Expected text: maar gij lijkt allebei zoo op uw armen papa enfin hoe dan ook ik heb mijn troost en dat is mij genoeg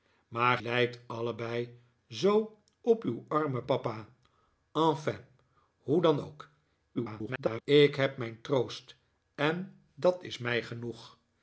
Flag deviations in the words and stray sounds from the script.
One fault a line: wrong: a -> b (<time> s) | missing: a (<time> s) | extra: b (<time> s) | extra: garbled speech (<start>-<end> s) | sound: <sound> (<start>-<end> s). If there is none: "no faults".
missing: gij (0.6 s)
extra: garbled speech (6.9-7.6 s)